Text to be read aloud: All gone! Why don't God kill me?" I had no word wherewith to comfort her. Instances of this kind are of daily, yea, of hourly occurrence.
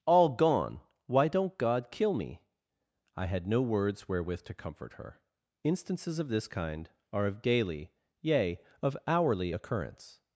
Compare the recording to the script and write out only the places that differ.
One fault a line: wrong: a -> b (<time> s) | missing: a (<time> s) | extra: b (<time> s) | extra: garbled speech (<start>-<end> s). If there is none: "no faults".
wrong: word -> words (3.6 s)